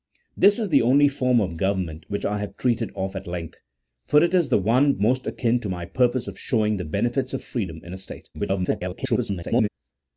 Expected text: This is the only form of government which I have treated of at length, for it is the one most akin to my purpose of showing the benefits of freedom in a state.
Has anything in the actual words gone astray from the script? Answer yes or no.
yes